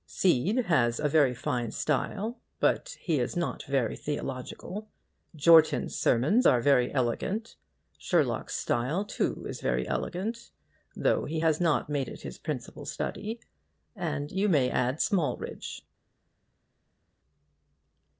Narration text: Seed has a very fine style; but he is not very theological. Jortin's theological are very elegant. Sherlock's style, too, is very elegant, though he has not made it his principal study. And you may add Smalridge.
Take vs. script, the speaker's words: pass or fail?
fail